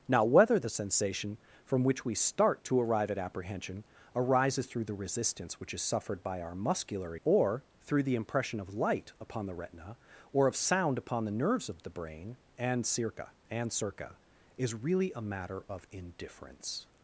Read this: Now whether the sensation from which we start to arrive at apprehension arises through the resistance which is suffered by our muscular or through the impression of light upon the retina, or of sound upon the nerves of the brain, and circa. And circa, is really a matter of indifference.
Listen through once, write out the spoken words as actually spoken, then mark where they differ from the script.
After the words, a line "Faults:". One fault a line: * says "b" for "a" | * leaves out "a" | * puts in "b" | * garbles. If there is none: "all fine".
Now whether the sensation from which we start to arrive at apprehension arises through the resistance which is suffered by our muscular or through the impression of light upon the retina, or of sound upon the nerves of the brain, and circa. And circa, is really a matter of indifference.
Faults:
all fine